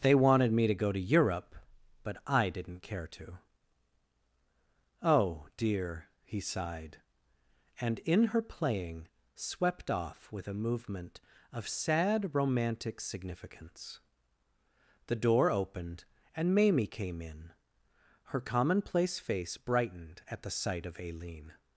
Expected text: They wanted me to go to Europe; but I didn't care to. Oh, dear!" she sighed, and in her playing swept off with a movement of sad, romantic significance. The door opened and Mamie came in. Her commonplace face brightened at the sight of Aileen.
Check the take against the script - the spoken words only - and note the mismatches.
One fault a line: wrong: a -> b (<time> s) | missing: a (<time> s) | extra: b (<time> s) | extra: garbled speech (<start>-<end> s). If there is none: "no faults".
wrong: she -> he (6.2 s)